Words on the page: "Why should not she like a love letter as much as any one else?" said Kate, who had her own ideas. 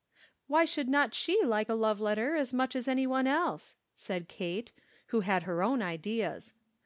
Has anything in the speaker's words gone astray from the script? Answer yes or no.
no